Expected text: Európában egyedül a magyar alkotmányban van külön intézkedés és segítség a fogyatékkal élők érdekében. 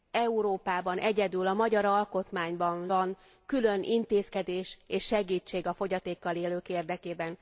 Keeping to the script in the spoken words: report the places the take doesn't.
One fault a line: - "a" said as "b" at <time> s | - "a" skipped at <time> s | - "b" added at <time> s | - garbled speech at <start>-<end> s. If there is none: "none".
none